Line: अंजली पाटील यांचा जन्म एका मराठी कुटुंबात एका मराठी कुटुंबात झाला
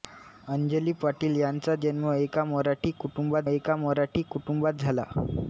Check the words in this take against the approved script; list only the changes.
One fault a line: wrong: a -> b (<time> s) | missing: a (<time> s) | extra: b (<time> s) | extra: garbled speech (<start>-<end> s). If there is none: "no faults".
no faults